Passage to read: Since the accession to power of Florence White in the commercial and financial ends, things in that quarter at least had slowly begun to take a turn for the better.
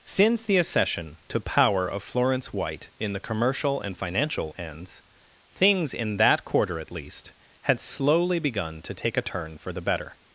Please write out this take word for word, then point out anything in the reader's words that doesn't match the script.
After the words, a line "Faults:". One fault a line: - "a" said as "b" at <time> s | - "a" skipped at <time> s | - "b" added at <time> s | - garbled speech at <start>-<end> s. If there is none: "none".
Since the accession to power of Florence White in the commercial and financial ends, things in that quarter at least had slowly begun to take a turn for the better.
Faults:
none